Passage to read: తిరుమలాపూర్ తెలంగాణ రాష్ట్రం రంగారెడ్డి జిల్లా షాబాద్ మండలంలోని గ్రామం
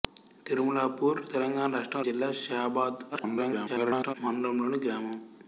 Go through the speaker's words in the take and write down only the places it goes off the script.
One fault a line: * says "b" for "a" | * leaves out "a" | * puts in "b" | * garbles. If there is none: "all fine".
* leaves out "రంగారెడ్డి"
* garbles